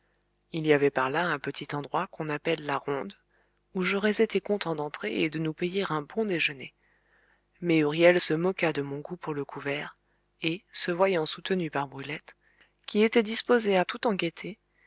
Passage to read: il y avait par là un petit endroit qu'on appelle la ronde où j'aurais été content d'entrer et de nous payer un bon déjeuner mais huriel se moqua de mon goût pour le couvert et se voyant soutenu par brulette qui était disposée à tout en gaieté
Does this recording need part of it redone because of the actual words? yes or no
no